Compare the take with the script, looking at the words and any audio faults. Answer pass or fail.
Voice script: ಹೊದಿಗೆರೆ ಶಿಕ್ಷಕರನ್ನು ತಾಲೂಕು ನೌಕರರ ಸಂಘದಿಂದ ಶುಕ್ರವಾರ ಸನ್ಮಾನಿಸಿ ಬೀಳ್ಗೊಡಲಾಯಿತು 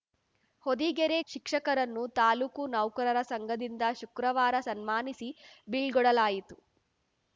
pass